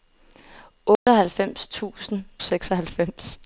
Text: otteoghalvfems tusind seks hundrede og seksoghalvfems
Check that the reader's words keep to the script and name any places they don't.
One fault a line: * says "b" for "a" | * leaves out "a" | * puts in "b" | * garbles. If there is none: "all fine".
* leaves out "seks hundrede og"